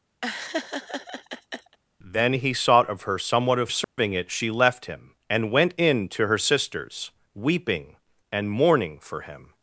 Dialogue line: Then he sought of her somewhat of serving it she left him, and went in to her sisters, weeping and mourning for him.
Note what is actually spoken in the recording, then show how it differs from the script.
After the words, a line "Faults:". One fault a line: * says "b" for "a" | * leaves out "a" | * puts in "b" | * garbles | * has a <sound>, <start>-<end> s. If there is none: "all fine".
Then he sought of her somewhat of serving it she left him, and went in to her sisters, weeping and mourning for him.
Faults:
* has a laugh, 0.2-1.8 s
* has a dropout, 3.8-4.0 s